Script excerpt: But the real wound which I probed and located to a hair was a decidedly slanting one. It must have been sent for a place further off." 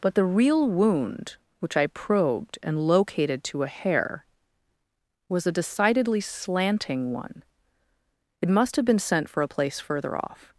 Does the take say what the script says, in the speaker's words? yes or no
yes